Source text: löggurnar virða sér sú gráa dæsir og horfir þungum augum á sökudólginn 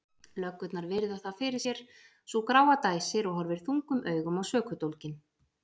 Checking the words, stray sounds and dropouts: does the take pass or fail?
fail